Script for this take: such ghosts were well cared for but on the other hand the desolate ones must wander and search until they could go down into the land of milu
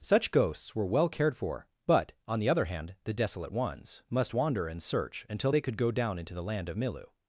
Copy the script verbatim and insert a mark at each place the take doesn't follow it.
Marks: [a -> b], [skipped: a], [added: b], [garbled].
such ghosts were well cared for but on the other hand the desolate ones must wander and search until they could go down into the land of milu